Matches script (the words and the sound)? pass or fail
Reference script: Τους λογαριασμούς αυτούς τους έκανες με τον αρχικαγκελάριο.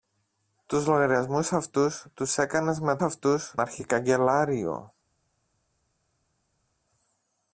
fail